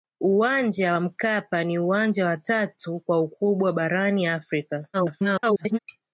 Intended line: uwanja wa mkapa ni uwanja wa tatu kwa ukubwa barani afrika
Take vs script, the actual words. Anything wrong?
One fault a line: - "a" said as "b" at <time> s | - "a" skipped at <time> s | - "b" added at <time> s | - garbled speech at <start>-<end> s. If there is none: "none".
- garbled speech at 4.9-5.8 s